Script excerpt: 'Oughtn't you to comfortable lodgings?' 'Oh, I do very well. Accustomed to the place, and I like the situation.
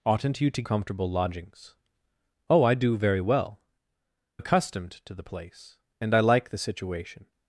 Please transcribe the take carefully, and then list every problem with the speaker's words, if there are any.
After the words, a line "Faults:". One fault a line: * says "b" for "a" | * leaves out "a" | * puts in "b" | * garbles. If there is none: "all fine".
'Oughtn't you to comfortable lodgings?' 'Oh, I do very well. Accustomed to the place, and I like the situation.
Faults:
all fine